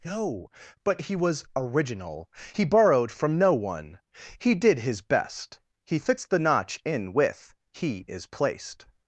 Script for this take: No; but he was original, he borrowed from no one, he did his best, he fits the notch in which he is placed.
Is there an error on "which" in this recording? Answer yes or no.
yes